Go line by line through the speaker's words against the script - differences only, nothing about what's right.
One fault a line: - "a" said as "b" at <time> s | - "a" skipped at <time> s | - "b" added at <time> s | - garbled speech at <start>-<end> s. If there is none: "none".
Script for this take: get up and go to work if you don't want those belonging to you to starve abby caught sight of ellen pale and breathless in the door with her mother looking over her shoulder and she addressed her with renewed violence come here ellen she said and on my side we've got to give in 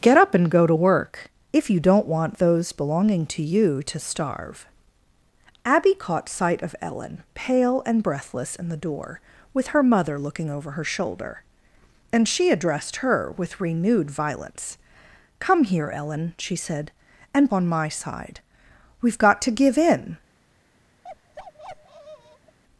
none